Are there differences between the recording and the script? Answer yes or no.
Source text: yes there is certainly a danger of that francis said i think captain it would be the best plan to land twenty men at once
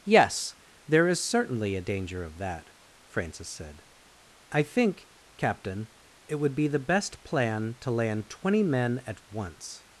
no